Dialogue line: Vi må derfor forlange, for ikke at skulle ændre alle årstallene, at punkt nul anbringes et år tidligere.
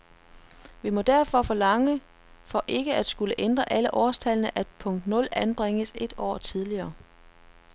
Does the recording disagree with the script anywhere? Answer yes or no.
no